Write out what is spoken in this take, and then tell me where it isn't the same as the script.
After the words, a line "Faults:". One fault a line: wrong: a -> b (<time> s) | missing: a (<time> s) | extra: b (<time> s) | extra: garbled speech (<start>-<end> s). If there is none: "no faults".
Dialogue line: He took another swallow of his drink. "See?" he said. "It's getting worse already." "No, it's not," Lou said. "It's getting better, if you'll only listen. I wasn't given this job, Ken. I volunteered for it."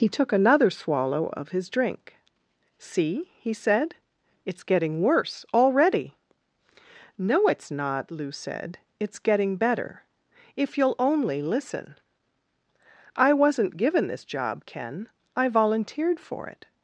He took another swallow of his drink. "See?" he said. "It's getting worse already." "No, it's not," Lou said. "It's getting better, if you'll only listen. I wasn't given this job, Ken. I volunteered for it."
Faults:
no faults